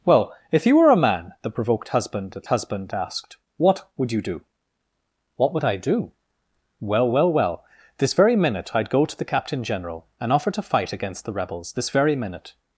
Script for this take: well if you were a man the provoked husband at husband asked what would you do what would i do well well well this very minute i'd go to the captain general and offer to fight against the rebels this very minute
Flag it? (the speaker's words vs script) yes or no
no